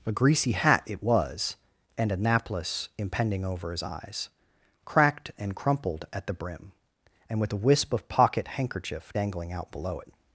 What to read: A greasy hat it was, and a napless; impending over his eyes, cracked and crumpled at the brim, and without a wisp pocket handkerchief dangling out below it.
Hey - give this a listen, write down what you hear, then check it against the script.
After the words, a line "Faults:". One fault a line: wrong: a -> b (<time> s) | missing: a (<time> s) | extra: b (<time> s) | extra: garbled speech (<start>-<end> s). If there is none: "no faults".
A greasy hat it was, and a napless; impending over his eyes, cracked and crumpled at the brim, and with a wisp of pocket handkerchief dangling out below it.
Faults:
wrong: without -> with (7.4 s)
extra: of (7.9 s)